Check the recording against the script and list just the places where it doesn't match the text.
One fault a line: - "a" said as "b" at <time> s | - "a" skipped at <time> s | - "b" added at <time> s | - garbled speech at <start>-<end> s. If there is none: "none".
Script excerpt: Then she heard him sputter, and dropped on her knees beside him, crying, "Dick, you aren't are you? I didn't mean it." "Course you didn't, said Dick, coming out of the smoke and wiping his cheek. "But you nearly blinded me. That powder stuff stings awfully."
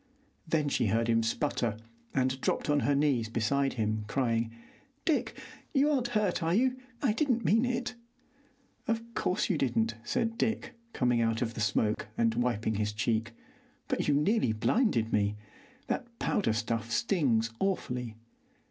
- "hurt" added at 6.2 s
- "Of" added at 8.9 s